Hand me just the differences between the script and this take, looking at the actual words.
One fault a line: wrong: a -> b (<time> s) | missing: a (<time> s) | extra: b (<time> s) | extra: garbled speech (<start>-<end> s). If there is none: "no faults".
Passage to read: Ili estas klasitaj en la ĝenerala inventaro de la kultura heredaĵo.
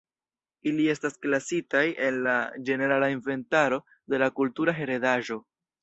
no faults